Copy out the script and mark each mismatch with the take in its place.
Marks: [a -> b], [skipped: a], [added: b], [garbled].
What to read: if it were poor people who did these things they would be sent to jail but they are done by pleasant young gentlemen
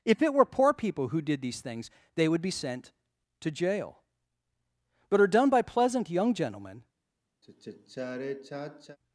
if it were poor people who did these things they would be sent to jail but [skipped: they] are done by pleasant young gentlemen